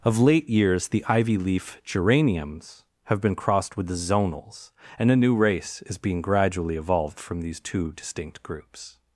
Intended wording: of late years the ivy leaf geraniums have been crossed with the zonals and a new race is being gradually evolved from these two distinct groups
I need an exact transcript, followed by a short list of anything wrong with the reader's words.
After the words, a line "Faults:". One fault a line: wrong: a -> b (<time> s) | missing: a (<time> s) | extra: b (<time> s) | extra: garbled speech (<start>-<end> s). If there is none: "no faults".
of late years the ivy leaf geraniums have been crossed with the zonals and a new race is being gradually evolved from these two distinct groups
Faults:
no faults